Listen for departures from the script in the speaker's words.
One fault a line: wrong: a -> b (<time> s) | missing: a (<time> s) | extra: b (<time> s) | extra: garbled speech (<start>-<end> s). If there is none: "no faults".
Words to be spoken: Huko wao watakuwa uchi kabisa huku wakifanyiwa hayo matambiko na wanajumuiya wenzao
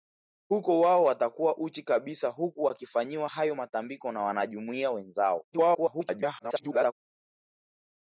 extra: garbled speech (5.5-6.9 s)